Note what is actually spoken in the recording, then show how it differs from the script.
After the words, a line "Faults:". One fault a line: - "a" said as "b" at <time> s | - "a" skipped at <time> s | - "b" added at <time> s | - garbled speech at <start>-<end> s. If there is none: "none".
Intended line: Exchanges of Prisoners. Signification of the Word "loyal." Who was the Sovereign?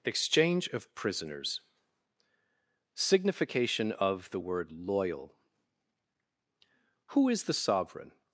Exchange of Prisoners. Signification of the Word "loyal." Who is the Sovereign?
Faults:
- "Exchanges" said as "Exchange" at 0.0 s
- "was" said as "is" at 7.3 s